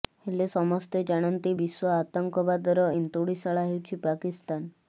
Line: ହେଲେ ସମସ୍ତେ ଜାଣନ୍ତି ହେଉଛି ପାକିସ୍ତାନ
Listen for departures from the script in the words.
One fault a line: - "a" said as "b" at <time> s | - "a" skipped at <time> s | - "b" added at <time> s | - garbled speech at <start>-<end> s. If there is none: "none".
- "ବିଶ୍ୱ ଆତଙ୍କବାଦର ଏନ୍ତୁଡିଶାଳା" added at 1.5 s